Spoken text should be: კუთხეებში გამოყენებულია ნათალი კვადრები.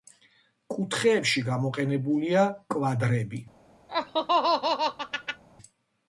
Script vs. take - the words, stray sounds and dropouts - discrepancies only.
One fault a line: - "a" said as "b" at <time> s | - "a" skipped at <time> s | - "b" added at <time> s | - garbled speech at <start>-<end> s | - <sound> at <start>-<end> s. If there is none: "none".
- "ნათალი" skipped at 2.5 s
- laugh at 3.9-5.4 s